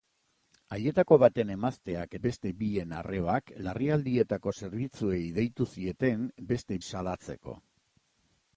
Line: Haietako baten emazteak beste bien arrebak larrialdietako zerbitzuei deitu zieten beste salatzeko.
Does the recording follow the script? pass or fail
pass